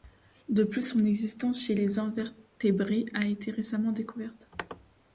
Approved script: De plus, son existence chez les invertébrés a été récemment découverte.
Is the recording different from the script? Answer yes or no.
no